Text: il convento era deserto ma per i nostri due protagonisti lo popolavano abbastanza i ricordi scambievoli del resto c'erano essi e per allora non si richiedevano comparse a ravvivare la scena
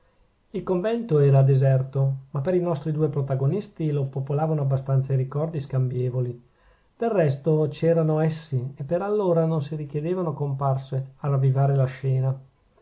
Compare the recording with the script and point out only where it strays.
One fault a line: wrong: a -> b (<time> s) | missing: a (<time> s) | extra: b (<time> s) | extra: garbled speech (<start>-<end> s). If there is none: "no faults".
no faults